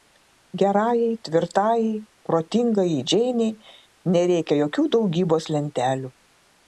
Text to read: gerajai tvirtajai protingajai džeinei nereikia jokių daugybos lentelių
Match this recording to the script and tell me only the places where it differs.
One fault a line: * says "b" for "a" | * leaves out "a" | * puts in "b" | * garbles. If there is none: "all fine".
all fine